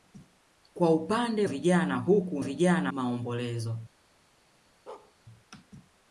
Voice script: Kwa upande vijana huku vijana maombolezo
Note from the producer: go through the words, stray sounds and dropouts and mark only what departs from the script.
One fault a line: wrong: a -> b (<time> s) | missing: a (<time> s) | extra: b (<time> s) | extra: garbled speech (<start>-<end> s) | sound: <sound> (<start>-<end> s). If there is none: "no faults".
sound: bark (4.9-5.1 s)